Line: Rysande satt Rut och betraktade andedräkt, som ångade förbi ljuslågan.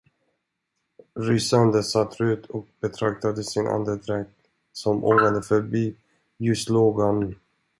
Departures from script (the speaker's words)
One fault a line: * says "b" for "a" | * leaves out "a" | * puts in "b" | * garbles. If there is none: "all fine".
* puts in "sin"